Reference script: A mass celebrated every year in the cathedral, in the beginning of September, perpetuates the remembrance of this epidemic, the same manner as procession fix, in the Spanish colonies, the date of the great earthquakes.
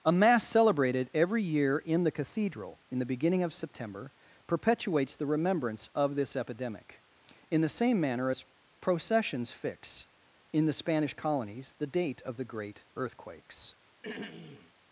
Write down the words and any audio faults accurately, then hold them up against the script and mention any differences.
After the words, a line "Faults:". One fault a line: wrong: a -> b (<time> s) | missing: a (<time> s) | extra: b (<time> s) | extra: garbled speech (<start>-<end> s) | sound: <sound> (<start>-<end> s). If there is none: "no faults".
A mass celebrated every year in the cathedral, in the beginning of September, perpetuates the remembrance of this epidemic, in the same manner as processions fix, in the Spanish colonies, the date of the great earthquakes.
Faults:
extra: in (7.5 s)
wrong: procession -> processions (8.8 s)
sound: throat clearing (14.0-14.7 s)